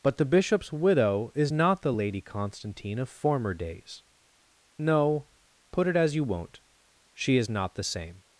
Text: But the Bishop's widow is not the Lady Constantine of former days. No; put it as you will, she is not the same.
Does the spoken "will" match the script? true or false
false